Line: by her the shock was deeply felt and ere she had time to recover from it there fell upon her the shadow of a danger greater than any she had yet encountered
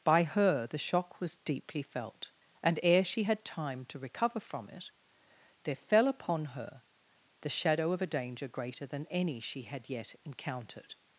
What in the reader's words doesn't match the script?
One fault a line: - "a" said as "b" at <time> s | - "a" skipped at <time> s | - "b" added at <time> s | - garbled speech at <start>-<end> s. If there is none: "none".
none